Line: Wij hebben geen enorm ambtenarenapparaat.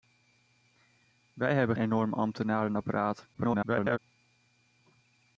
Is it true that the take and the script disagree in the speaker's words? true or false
true